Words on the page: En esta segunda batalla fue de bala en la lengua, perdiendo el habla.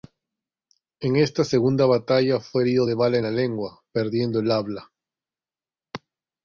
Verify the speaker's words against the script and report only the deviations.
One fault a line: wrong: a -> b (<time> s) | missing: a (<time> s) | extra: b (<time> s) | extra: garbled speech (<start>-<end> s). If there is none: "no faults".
extra: herido (2.6 s)